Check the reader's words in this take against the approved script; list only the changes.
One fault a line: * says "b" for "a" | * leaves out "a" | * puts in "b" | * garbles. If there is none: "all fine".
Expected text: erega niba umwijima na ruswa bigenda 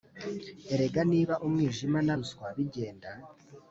all fine